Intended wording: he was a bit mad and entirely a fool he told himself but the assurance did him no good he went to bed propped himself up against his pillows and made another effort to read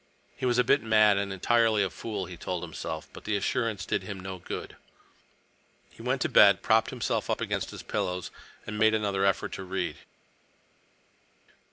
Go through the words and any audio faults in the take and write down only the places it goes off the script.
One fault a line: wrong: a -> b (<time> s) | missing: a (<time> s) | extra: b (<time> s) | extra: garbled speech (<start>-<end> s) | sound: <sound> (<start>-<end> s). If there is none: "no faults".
no faults